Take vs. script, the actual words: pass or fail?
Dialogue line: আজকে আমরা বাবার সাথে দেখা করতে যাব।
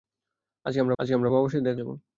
fail